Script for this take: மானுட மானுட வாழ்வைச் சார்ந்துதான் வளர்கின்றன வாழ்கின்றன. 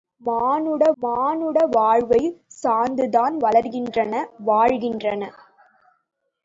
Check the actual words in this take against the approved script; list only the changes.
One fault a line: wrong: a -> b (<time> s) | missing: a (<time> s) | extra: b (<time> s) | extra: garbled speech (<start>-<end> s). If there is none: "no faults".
no faults